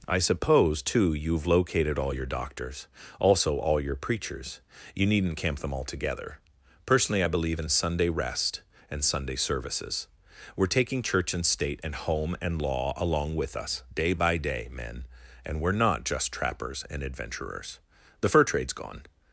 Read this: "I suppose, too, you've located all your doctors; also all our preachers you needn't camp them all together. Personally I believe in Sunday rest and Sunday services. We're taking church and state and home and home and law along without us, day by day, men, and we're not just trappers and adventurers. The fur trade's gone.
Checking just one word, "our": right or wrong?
wrong